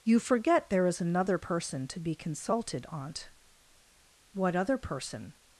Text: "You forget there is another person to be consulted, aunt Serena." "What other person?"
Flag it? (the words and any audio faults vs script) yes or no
yes